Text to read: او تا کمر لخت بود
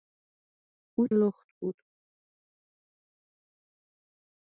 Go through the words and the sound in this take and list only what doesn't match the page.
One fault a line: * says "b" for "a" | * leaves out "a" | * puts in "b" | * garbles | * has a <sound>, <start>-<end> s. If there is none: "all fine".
* leaves out "تا کمر"